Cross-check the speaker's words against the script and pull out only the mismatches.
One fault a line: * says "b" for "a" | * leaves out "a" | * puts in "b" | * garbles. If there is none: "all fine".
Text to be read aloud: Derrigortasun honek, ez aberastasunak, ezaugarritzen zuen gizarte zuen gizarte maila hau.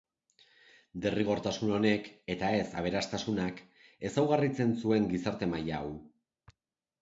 * puts in "eta"
* leaves out "zuen gizarte"